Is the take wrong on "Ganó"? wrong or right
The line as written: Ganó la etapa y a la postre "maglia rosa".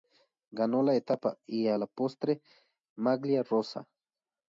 right